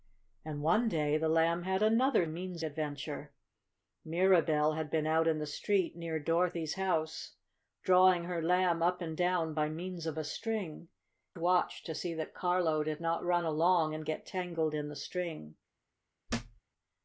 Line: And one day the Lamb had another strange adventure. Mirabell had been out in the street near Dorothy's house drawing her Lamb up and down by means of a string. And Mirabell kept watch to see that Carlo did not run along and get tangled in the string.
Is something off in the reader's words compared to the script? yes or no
yes